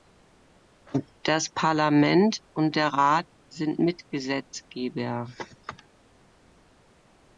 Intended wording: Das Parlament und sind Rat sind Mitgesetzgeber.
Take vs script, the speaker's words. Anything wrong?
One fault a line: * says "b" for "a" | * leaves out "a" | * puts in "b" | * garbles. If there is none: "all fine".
* says "der" for "sind"